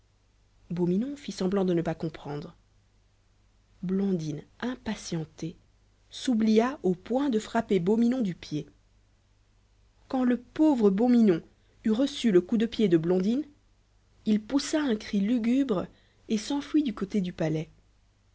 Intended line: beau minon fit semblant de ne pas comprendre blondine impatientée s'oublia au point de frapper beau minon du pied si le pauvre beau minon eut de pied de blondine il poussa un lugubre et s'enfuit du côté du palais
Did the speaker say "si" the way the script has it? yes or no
no